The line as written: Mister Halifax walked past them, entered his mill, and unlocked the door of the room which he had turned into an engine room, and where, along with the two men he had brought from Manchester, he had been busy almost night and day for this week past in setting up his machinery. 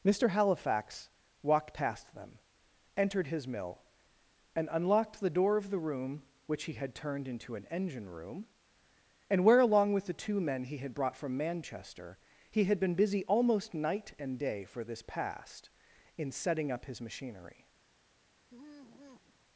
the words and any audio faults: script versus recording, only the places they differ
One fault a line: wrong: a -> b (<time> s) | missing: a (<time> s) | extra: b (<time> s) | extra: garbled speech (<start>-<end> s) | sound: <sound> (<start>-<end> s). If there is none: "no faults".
missing: week (15.0 s)
sound: sigh (18.5-19.4 s)